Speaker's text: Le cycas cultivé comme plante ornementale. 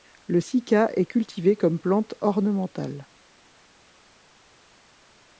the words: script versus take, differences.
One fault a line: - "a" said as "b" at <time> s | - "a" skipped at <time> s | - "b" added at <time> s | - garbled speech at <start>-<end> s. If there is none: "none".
- "est" added at 0.9 s